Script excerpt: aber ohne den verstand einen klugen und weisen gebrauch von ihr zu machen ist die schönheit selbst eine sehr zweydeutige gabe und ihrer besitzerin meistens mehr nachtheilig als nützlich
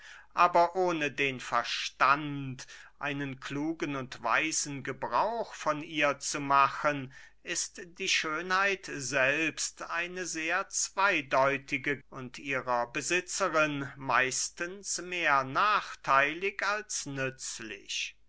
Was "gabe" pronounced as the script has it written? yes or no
no